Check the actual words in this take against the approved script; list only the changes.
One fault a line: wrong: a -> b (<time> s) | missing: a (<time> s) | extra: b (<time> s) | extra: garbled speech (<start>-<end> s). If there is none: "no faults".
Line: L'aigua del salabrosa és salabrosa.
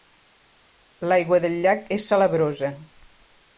wrong: salabrosa -> llac (1.6 s)